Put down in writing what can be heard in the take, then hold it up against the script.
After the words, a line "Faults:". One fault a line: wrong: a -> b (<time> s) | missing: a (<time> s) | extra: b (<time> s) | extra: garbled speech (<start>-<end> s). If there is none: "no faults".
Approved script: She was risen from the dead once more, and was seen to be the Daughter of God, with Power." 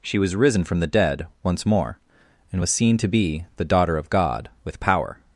She was risen from the dead once more, and was seen to be the Daughter of God, with Power."
Faults:
no faults